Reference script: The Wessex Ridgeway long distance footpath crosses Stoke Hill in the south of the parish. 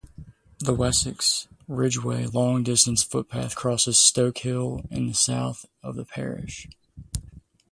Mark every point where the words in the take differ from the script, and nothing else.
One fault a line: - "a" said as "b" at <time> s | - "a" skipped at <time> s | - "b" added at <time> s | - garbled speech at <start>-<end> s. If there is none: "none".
none